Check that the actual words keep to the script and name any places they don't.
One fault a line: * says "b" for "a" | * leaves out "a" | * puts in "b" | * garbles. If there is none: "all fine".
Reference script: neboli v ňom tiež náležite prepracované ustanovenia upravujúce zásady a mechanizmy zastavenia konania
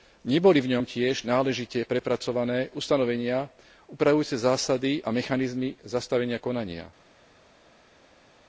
all fine